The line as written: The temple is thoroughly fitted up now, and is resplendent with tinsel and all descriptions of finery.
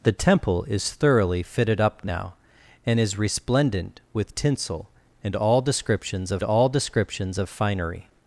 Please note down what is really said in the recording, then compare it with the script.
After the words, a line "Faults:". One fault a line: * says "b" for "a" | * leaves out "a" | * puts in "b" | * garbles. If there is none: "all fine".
The temple is thoroughly fitted up now, and is resplendent with tinsel and all descriptions of all descriptions of finery.
Faults:
* puts in "all descriptions of"